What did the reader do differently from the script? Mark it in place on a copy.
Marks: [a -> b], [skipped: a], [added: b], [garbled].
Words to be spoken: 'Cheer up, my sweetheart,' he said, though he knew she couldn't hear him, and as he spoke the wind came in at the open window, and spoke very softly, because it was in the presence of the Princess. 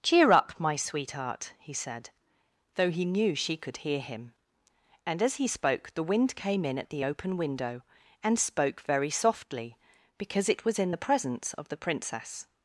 'Cheer up, my sweetheart,' he said, though he knew she [couldn't -> could] hear him, and as he spoke the wind came in at the open window, and spoke very softly, because it was in the presence of the Princess.